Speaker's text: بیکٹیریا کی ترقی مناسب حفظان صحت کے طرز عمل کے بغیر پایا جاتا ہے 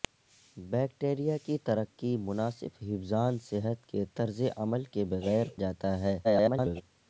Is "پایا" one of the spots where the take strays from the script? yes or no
yes